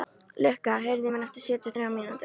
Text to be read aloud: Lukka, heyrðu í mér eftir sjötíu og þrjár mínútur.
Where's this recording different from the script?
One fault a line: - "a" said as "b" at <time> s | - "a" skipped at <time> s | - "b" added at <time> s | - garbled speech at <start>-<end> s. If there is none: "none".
none